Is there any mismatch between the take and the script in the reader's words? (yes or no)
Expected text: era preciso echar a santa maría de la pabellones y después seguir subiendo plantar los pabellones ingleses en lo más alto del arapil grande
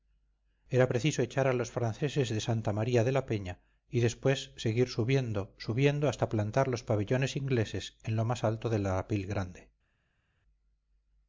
yes